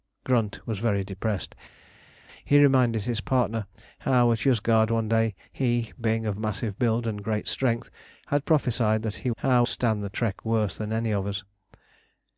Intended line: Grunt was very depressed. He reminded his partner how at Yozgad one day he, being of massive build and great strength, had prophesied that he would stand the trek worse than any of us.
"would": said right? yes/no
no